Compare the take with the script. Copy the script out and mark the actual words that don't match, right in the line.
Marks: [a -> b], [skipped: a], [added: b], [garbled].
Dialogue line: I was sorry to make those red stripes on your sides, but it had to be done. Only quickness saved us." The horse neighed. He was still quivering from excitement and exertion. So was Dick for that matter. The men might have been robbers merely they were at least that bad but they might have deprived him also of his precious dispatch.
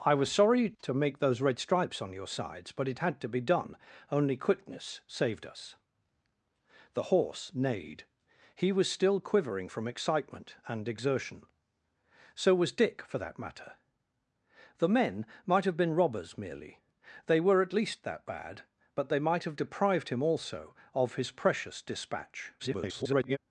I was sorry to make those red stripes on your sides, but it had to be done. Only quickness saved us." The horse neighed. He was still quivering from excitement and exertion. So was Dick for that matter. The men might have been robbers merely they were at least that bad but they might have deprived him also of his precious dispatch. [garbled]